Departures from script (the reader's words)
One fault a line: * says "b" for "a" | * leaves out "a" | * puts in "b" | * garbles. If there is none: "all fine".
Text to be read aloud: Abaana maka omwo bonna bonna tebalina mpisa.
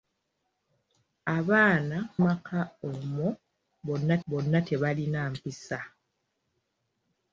all fine